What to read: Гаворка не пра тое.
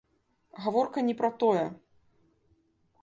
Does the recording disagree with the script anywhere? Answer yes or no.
no